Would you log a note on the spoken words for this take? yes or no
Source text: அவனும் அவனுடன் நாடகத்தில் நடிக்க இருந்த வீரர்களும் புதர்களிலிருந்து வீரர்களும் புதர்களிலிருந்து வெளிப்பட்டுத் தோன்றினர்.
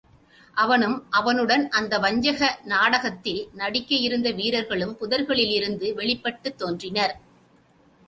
yes